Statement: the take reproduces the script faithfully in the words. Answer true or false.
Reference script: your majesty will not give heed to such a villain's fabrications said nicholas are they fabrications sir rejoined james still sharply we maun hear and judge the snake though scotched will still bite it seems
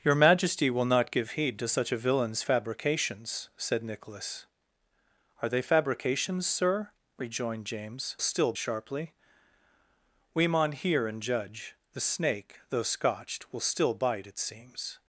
true